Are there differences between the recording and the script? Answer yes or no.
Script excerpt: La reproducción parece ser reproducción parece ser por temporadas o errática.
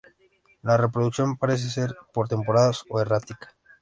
yes